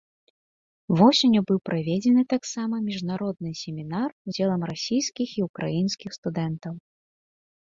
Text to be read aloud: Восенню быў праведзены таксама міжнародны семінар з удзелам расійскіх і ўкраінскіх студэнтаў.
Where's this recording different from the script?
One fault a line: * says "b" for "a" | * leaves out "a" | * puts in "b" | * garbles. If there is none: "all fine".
* leaves out "з"